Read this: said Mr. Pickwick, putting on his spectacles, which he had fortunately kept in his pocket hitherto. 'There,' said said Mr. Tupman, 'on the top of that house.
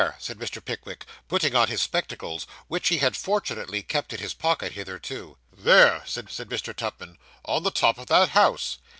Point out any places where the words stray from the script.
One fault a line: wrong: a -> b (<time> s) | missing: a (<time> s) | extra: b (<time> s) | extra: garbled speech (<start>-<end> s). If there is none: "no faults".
no faults